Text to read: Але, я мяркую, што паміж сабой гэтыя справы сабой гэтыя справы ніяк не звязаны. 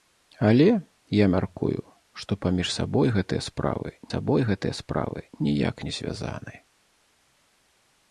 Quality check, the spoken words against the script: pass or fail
pass